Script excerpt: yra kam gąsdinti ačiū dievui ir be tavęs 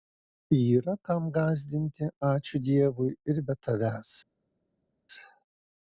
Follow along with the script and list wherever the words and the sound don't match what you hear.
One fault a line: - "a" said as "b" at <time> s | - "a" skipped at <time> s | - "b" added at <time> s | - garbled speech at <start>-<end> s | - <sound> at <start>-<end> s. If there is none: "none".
none